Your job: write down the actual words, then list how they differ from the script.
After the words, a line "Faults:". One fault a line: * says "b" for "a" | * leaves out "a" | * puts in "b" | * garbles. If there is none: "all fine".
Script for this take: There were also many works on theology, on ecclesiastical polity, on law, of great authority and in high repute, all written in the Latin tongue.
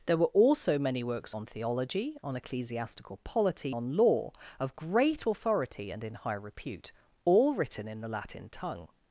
There were also many works on theology, on ecclesiastical polity, on law, of great authority and in high repute, all written in the Latin tongue.
Faults:
all fine